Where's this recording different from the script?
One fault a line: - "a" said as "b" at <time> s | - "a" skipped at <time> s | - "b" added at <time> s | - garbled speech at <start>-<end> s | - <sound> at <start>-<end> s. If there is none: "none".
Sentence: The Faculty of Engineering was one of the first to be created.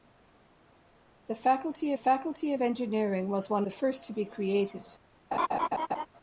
- "Faculty" added at 2.0 s
- "of" skipped at 3.6 s
- laugh at 5.3-6.1 s